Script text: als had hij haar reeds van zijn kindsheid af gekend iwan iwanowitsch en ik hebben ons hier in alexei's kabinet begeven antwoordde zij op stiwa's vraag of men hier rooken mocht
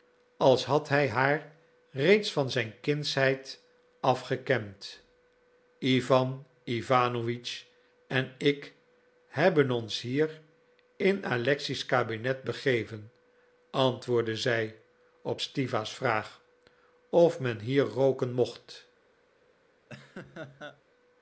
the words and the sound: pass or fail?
fail